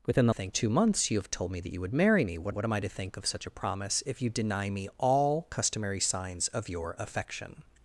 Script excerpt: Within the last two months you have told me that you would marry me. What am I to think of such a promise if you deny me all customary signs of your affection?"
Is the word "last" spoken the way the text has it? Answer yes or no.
no